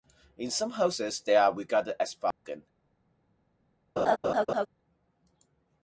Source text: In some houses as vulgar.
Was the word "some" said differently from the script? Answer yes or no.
no